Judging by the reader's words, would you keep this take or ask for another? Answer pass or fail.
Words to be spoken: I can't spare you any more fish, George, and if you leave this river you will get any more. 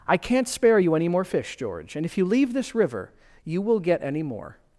pass